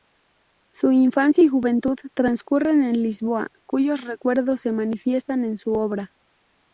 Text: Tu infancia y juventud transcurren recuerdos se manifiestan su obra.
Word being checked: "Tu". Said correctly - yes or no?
no